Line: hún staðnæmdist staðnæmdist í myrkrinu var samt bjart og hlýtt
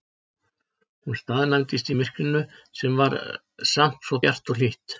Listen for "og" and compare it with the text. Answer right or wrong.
right